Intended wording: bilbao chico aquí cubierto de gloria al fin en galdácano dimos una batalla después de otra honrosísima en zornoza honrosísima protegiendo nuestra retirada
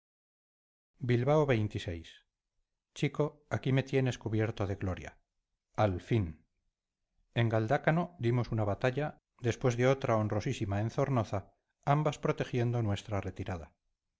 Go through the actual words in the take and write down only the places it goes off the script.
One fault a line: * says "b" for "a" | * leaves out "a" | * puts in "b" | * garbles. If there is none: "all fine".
* puts in "me tienes"
* says "ambas" for "honrosísima"